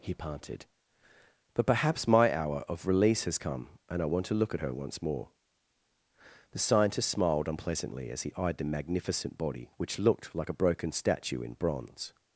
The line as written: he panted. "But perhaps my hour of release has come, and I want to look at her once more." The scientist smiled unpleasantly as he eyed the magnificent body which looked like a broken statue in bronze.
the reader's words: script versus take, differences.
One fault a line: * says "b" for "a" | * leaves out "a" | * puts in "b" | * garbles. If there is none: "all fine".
all fine